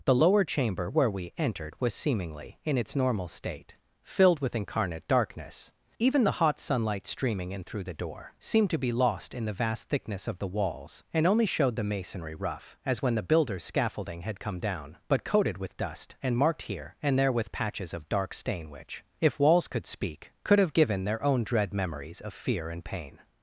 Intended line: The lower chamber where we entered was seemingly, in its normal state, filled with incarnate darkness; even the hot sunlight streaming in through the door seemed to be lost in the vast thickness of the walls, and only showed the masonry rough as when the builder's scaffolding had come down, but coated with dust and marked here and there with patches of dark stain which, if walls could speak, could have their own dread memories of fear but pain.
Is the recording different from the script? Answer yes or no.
yes